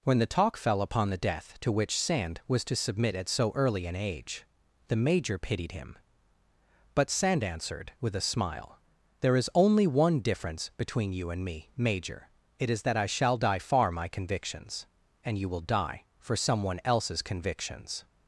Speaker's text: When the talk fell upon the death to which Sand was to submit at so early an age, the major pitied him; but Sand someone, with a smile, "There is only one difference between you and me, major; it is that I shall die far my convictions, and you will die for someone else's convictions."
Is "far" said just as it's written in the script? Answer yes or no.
yes